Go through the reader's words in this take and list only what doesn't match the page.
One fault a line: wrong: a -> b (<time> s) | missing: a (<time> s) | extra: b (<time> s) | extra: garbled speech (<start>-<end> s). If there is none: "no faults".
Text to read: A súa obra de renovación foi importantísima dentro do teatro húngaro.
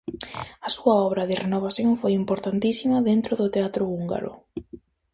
no faults